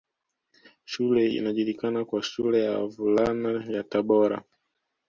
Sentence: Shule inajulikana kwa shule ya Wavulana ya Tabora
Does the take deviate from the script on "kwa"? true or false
false